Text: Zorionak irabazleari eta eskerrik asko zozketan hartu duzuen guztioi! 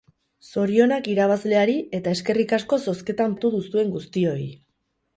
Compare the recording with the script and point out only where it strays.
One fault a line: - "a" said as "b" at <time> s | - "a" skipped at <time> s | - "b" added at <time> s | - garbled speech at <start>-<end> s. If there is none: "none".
none